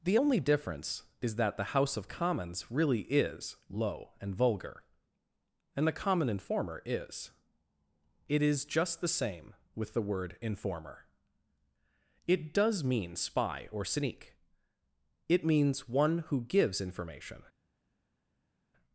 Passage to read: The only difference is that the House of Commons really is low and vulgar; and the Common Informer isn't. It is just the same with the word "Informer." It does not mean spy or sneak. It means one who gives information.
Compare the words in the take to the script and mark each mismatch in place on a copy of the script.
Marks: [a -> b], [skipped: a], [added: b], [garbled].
The only difference is that the House of Commons really is low and vulgar; and the Common Informer [isn't. -> is] It is just the same with the word "Informer." It does [skipped: not] mean spy or sneak. It means one who gives information.